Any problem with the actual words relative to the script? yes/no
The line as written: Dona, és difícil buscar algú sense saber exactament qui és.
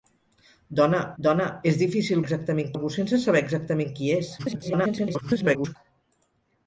yes